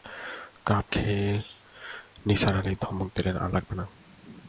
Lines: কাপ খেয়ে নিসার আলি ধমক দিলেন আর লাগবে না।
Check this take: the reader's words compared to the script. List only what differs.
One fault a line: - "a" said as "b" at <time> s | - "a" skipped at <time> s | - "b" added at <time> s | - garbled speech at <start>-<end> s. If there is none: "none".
none